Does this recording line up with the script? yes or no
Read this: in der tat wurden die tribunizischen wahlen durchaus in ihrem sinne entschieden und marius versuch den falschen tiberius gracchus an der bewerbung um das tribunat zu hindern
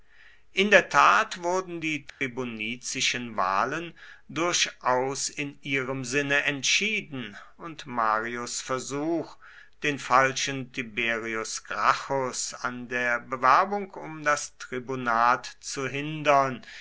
yes